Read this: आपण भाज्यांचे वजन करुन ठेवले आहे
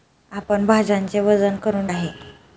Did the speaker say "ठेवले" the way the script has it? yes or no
no